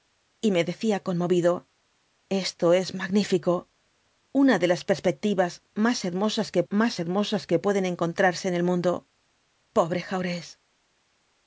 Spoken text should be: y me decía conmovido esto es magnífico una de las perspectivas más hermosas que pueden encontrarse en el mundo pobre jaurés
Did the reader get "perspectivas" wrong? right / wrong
right